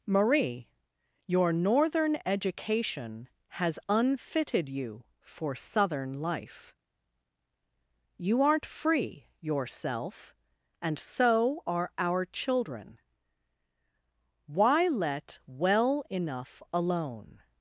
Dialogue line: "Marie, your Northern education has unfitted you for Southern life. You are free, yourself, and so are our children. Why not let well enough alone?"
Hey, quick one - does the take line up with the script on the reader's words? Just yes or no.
no